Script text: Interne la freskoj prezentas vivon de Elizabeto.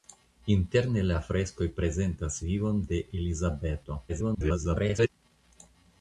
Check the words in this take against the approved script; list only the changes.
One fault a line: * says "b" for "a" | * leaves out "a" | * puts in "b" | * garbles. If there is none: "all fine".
* garbles